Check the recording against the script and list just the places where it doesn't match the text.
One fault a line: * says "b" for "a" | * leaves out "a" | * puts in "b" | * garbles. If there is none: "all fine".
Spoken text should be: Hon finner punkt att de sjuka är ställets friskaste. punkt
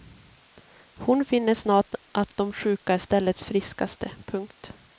* says "snart" for "punkt"